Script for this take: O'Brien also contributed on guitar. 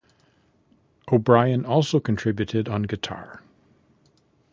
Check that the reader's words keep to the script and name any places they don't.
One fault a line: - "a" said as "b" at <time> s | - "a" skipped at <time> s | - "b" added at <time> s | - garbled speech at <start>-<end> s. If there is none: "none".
none